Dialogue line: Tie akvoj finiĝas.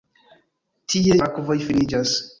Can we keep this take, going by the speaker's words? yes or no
yes